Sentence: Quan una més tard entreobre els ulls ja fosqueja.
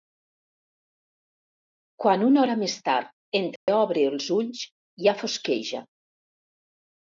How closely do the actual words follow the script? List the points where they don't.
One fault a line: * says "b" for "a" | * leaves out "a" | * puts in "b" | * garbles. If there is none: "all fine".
* puts in "hora"